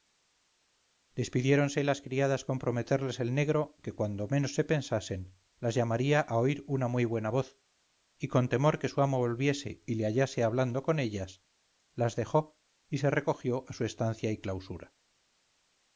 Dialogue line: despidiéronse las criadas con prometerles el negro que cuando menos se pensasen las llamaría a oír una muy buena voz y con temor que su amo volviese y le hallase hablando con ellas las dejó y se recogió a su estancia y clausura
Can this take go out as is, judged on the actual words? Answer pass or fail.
pass